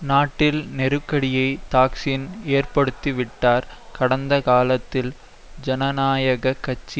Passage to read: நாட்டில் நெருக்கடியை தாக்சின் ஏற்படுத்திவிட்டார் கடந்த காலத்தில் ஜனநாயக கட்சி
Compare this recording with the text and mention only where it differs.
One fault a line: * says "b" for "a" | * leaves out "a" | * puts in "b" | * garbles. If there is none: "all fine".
all fine